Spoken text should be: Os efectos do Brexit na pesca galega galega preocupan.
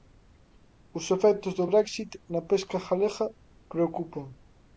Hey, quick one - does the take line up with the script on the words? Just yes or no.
no